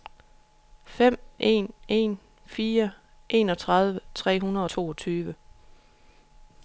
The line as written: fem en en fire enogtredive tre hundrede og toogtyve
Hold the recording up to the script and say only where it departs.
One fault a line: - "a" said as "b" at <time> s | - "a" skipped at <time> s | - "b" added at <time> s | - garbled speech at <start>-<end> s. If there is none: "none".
- "og" skipped at 4.7 s